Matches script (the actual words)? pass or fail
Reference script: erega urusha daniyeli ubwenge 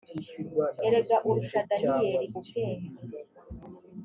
pass